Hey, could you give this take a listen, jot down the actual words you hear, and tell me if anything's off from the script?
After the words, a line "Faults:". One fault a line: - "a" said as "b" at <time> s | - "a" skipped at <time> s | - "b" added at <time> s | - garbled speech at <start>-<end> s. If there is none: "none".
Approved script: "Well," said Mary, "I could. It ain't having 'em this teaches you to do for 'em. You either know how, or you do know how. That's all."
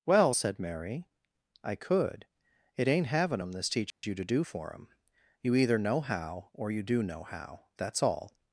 "Well," said Mary, "I could. It ain't having 'em this teaches you to do for 'em. You either know how, or you do know how. That's all."
Faults:
none